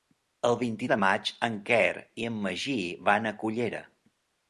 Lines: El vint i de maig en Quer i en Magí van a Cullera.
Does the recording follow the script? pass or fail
pass